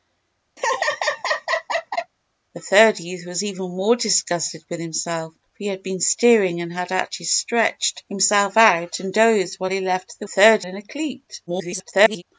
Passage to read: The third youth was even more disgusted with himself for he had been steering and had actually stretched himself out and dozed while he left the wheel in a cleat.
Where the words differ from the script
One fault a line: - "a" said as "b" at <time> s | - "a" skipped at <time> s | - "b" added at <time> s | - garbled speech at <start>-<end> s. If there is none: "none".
- "wheel" said as "third" at 10.2 s
- garbled speech at 11.5-12.2 s